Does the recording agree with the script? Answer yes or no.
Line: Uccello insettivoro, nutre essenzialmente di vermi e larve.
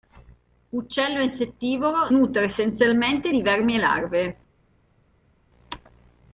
yes